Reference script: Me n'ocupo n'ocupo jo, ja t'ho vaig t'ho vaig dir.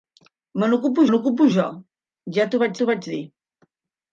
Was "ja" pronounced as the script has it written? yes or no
yes